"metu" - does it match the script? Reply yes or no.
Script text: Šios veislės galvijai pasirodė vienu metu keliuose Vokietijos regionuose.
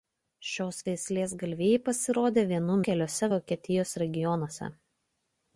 no